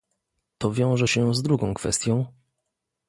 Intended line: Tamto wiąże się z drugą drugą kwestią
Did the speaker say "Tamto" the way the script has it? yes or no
no